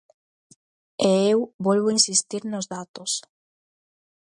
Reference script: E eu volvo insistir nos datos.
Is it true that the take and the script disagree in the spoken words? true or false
false